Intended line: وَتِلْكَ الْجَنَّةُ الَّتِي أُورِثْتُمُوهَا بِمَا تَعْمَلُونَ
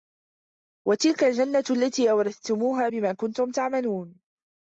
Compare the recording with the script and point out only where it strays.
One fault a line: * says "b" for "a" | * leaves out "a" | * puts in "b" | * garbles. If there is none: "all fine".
* puts in "كُنْتُمْ"